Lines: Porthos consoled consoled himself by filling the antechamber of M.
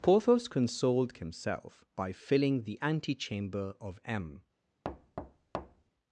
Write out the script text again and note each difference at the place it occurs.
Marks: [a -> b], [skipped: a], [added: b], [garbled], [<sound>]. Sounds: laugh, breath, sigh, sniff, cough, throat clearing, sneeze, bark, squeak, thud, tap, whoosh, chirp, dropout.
Porthos consoled [skipped: consoled] himself by filling the antechamber of M. [thud]